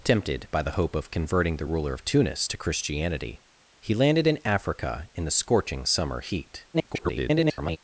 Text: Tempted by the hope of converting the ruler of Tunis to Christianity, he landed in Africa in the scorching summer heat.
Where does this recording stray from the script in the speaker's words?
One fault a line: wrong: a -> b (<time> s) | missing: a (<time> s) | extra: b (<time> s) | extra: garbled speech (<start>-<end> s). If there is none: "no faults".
extra: garbled speech (6.7-7.8 s)